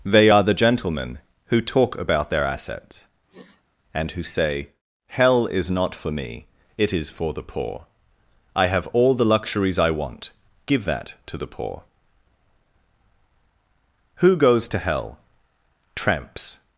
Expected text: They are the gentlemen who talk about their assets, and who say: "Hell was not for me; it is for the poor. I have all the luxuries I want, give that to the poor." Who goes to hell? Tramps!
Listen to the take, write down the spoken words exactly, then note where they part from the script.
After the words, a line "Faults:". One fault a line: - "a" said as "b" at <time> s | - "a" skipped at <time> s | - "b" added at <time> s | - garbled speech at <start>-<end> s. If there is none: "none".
They are the gentlemen who talk about their assets, and who say: "Hell is not for me; it is for the poor. I have all the luxuries I want, give that to the poor." Who goes to hell? Tramps!
Faults:
- "was" said as "is" at 5.5 s